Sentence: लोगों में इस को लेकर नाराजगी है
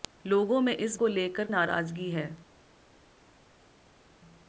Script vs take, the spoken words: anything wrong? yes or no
no